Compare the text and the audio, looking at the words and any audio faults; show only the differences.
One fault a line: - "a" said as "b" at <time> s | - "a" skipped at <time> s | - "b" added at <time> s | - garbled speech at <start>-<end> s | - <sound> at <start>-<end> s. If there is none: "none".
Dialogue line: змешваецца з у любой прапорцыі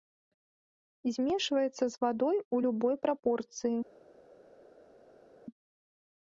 - "вадой" added at 2.0 s